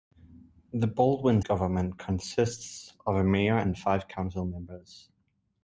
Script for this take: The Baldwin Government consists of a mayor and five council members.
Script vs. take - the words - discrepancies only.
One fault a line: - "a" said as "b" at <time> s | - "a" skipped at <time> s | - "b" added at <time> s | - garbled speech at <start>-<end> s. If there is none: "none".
none